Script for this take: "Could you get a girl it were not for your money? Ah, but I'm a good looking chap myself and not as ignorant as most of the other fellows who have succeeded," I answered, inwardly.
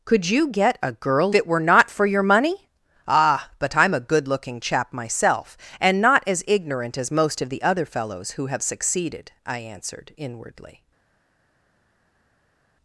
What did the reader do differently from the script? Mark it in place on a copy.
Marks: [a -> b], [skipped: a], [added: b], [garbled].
"Could you get a girl it were not for your money? Ah, but I'm a good looking chap myself and not as ignorant as most of the other fellows who have succeeded," I answered, inwardly.